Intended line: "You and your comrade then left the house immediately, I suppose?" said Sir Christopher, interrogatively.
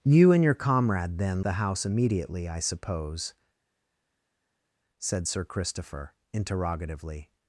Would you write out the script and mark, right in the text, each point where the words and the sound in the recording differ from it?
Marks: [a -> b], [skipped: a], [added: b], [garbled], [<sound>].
"You and your comrade then [skipped: left] the house immediately, I suppose?" said Sir Christopher, interrogatively.